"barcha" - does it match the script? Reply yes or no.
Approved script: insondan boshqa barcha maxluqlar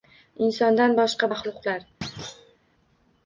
no